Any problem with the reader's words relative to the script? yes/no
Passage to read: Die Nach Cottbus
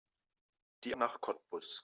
no